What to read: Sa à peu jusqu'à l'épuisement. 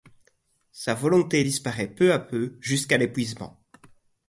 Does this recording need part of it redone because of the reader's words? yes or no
yes